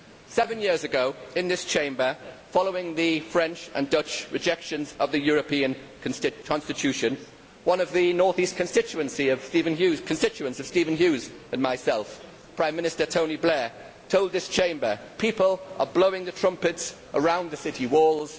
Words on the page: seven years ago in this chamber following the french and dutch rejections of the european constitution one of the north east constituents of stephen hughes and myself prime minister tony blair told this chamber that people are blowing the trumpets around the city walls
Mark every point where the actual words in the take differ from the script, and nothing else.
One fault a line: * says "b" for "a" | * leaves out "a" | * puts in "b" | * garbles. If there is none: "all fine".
* leaves out "that"